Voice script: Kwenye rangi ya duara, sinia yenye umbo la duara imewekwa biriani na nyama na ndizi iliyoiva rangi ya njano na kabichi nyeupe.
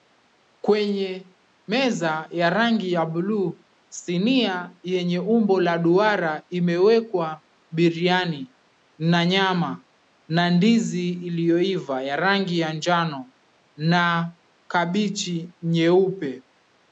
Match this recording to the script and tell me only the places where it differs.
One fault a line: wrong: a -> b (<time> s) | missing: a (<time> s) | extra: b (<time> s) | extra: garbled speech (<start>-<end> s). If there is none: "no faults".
extra: meza ya (1.7 s)
wrong: duara -> buluu (3.0 s)
extra: ya (12.0 s)